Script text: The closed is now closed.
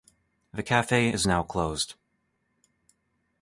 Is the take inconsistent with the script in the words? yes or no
yes